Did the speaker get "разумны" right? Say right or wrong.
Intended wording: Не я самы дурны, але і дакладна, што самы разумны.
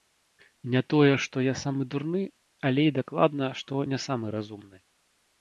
right